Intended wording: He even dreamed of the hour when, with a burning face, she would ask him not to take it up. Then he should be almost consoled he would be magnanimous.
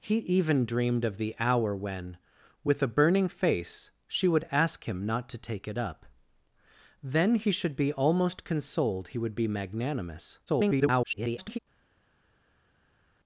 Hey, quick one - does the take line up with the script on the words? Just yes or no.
no